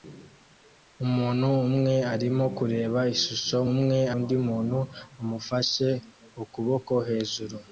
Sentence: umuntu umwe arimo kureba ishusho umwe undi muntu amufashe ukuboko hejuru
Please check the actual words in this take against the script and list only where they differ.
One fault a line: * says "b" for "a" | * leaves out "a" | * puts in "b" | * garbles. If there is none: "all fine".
all fine